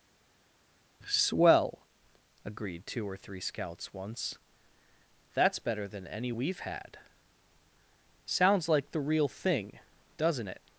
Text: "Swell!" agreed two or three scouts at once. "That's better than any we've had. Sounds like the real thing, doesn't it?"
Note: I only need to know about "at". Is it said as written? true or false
false